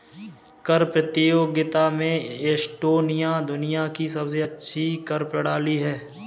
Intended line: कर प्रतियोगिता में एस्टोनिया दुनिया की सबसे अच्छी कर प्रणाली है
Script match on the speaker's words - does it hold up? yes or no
yes